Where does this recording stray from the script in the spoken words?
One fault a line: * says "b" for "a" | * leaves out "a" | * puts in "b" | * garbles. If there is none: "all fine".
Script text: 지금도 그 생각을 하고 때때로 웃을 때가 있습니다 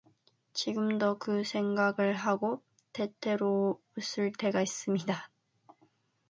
all fine